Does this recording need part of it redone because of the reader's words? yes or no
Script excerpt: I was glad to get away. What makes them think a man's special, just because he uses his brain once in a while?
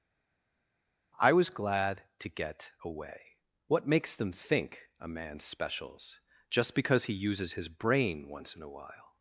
yes